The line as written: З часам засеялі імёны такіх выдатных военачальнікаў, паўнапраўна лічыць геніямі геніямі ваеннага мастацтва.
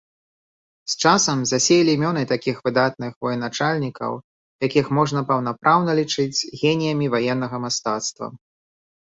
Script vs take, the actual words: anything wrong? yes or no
yes